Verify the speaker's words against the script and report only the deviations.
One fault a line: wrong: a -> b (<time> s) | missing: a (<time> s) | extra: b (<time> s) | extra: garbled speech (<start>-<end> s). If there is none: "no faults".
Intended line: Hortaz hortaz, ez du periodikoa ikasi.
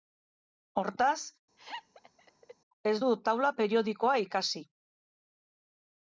missing: hortaz (1.2 s)
extra: taula (3.3 s)